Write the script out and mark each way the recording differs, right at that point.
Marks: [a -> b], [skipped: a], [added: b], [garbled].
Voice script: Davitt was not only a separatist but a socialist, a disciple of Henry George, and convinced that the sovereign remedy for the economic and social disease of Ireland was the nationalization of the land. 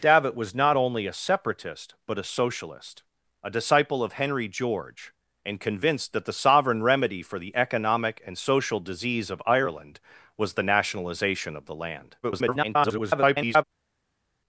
Davitt was not only a separatist but a socialist, a disciple of Henry George, and convinced that the sovereign remedy for the economic and social disease of Ireland was the nationalization of the land. [garbled]